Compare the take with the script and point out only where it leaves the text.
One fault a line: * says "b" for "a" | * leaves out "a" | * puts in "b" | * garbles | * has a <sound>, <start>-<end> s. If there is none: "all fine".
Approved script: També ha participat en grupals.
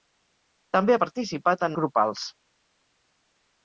all fine